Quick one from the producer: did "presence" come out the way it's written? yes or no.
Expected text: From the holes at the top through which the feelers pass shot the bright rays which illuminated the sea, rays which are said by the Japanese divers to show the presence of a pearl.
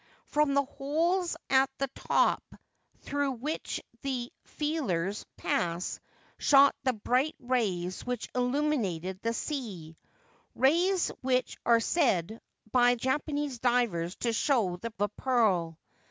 no